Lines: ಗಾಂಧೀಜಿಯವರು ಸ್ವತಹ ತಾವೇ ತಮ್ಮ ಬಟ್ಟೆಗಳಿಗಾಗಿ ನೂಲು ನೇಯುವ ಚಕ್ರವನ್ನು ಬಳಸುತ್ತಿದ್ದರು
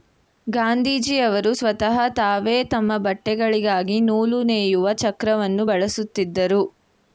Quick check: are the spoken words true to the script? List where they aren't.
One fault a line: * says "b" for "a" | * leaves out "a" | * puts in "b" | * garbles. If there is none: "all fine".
all fine